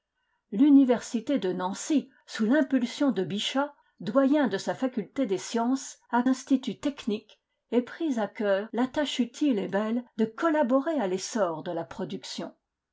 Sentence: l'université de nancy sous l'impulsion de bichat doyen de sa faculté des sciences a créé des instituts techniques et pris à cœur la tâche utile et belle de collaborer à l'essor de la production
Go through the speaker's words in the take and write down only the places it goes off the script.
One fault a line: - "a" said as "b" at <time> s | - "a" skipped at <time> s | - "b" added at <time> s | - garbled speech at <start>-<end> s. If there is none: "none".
- "créé des" skipped at 6.2 s